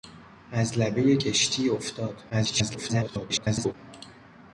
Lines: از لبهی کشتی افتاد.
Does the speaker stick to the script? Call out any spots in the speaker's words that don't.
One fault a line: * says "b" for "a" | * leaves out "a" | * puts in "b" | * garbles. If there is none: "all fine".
* garbles